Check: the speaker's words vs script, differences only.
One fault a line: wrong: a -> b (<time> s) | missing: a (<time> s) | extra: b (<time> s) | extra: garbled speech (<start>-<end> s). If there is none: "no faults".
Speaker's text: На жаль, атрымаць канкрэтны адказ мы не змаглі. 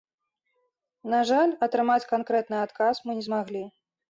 no faults